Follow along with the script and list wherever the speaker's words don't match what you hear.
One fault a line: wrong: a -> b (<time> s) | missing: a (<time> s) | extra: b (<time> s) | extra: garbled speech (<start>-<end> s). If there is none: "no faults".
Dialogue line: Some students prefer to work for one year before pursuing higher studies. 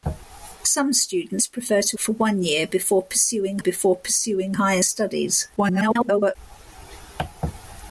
missing: work (2.0 s)
extra: before pursuing (3.6 s)
extra: garbled speech (5.6-6.4 s)